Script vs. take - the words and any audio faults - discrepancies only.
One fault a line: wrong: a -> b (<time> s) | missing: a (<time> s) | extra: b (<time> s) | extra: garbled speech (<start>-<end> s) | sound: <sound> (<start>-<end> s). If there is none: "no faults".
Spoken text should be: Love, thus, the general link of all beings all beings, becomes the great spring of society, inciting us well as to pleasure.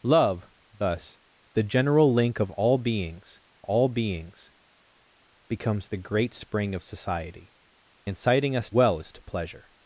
no faults